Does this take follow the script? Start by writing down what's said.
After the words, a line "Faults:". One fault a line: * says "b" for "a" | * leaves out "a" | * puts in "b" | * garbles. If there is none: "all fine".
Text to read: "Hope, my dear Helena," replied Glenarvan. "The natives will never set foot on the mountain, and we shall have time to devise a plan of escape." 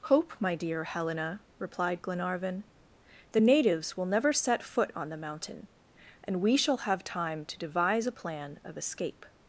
"Hope, my dear Helena," replied Glenarvan. "The natives will never set foot on the mountain, and we shall have time to devise a plan of escape."
Faults:
all fine